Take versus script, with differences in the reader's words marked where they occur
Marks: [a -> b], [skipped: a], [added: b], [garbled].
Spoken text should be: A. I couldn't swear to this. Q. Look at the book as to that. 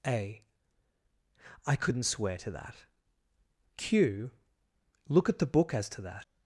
A. I couldn't swear to [this. -> that] Q. Look at the book as to that.